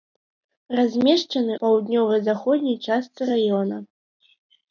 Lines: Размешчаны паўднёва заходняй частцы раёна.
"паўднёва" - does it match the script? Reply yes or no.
yes